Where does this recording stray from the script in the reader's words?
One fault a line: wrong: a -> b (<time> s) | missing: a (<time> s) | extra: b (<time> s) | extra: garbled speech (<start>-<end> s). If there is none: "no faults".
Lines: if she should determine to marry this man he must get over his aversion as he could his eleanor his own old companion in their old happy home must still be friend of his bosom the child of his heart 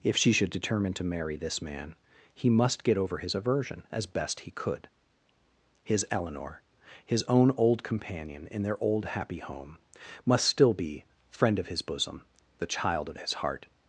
extra: best (4.0 s)